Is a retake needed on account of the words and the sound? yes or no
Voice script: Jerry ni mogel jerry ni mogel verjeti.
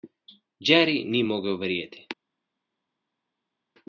yes